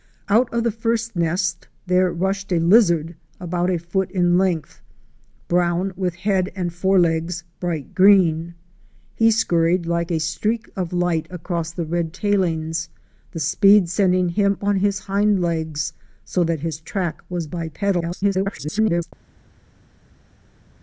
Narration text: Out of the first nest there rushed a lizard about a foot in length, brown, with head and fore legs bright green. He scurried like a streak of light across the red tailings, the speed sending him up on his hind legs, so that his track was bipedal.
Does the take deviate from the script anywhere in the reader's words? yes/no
yes